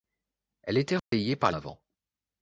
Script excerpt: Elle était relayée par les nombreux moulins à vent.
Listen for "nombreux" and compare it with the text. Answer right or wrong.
wrong